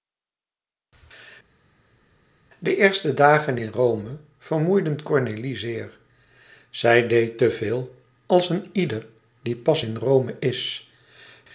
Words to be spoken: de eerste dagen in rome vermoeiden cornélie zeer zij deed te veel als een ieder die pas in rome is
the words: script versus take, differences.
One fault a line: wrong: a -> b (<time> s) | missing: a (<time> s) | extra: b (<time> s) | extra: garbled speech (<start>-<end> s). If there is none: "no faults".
no faults